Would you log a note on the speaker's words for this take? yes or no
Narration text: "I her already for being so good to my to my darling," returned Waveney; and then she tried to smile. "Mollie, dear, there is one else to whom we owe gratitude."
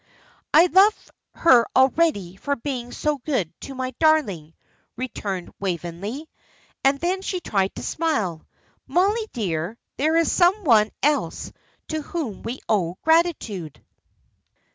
yes